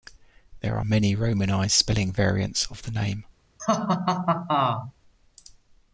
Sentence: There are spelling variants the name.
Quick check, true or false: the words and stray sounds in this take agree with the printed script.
false